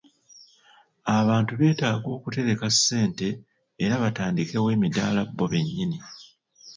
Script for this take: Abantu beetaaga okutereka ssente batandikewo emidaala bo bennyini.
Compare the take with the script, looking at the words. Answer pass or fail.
fail